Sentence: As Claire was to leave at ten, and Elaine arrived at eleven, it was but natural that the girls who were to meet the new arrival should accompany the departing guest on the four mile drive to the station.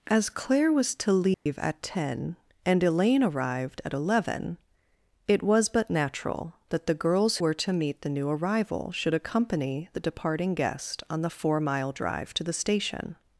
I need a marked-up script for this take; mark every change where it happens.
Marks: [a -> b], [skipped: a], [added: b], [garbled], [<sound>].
As Claire was to leave [dropout] at ten, and Elaine arrived at eleven, it was but natural that the girls [skipped: who] were to meet the new arrival should accompany the departing guest on the four mile drive to the station.